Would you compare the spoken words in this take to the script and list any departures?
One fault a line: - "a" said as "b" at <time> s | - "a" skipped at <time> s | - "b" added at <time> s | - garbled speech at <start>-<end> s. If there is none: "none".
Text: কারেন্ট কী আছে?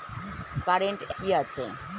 none